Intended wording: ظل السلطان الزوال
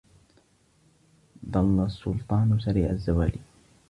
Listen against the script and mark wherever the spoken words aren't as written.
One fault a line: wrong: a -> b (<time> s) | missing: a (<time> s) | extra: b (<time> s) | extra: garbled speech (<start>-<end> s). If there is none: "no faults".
extra: سريع (2.6 s)